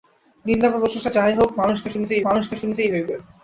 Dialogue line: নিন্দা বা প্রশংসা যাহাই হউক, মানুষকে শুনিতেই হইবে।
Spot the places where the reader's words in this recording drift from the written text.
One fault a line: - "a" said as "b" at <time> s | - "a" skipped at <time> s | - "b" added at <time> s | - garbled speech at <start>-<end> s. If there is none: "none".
- "মানুষকে শুনিতেই" added at 2.2 s